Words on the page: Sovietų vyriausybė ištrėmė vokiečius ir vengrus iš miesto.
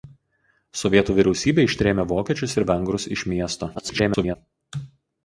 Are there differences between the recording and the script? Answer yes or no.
yes